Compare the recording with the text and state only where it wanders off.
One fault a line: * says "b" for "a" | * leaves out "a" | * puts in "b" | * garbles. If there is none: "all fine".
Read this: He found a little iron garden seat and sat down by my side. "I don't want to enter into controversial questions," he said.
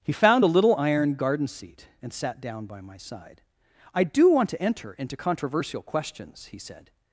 * says "do" for "don't"